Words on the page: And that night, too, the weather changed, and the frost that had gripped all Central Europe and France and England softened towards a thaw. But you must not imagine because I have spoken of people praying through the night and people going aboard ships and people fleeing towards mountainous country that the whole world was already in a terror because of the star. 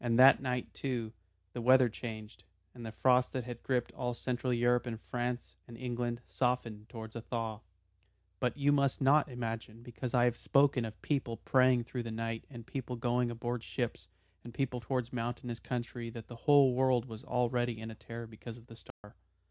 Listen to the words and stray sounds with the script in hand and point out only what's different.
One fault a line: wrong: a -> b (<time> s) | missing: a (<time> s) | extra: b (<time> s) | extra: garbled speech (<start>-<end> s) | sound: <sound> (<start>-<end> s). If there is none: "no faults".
missing: fleeing (14.8 s)
sound: dropout (18.9-19.0 s)